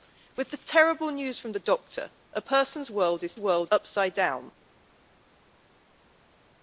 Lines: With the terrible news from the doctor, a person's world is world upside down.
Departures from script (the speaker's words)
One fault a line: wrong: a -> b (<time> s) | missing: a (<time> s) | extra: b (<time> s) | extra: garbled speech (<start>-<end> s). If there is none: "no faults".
no faults